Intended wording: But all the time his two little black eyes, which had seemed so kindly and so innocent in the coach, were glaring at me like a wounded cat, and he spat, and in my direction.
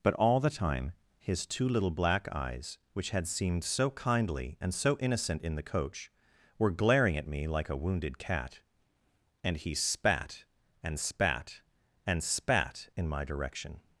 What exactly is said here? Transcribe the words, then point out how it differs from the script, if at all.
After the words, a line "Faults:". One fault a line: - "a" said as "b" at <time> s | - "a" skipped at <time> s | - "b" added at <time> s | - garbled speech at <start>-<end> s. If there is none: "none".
But all the time his two little black eyes, which had seemed so kindly and so innocent in the coach, were glaring at me like a wounded cat, and he spat, and spat, and spat in my direction.
Faults:
- "spat and spat" added at 11.0 s